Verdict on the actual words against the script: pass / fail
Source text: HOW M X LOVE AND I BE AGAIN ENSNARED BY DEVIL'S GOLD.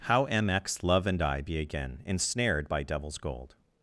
pass